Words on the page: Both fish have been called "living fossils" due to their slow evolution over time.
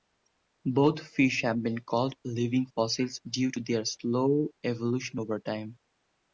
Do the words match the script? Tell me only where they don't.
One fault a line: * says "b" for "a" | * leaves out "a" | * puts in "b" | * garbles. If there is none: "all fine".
all fine